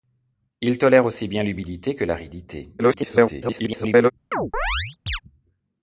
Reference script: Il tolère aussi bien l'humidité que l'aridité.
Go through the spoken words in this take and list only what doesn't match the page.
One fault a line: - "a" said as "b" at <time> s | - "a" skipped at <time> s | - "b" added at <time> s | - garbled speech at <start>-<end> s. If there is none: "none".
- garbled speech at 2.8-4.1 s